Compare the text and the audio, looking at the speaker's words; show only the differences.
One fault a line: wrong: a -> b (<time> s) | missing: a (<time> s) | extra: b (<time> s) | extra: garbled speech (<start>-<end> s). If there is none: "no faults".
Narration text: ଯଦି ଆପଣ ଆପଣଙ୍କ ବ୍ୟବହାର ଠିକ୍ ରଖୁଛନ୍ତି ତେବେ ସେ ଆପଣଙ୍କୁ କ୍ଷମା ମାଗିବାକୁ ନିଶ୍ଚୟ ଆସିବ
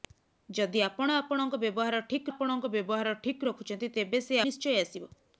extra: ଆପଣଙ୍କ ବ୍ୟବହାର ଠିକ୍ (2.3 s)
missing: ଆପଣଙ୍କୁ କ୍ଷମା ମାଗିବାକୁ (4.4 s)